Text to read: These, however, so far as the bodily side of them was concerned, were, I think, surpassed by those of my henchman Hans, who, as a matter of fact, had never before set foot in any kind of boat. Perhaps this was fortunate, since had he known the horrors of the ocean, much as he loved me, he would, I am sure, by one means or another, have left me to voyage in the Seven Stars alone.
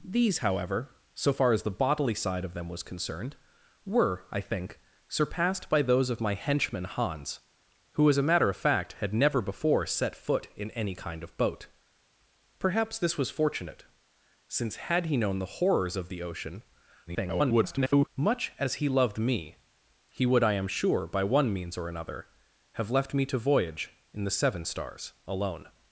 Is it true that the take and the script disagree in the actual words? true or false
true